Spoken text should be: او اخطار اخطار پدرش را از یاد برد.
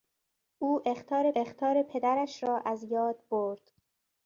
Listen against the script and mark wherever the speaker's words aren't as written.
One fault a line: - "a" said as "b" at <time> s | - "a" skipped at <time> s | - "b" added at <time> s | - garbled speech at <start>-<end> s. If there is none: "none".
none